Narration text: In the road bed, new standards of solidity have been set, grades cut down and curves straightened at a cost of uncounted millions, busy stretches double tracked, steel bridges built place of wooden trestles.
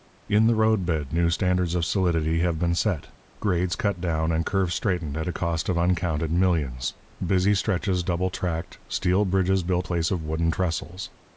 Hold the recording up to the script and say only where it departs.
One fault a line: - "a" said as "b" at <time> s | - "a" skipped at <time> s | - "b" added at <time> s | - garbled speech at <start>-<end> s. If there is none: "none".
none